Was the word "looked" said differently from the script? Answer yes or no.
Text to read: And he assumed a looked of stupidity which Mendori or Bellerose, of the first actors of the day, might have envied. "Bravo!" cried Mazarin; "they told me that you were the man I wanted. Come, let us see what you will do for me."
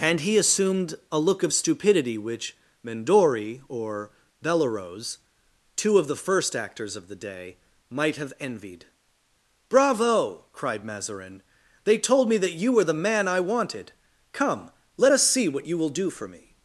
yes